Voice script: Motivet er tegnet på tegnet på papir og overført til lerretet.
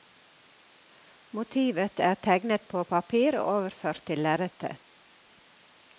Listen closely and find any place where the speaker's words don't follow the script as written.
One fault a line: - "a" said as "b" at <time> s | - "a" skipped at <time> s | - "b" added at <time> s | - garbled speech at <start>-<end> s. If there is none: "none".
- "tegnet på" skipped at 2.8 s